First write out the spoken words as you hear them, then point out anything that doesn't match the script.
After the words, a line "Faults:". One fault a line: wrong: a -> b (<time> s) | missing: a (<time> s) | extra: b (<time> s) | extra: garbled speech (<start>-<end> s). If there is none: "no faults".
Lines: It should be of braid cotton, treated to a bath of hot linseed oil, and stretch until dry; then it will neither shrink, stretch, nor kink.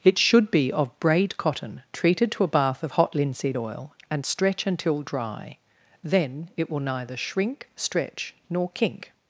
It should be of braid cotton, treated to a bath of hot linseed oil, and stretch until dry; then it will neither shrink, stretch, nor kink.
Faults:
no faults